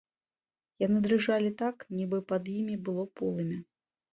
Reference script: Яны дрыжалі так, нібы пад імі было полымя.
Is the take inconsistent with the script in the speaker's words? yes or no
no